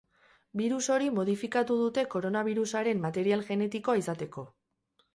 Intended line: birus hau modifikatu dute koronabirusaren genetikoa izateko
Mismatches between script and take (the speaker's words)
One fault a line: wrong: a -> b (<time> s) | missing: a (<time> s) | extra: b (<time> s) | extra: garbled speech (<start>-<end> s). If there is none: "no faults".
wrong: hau -> hori (0.9 s)
extra: material (3.0 s)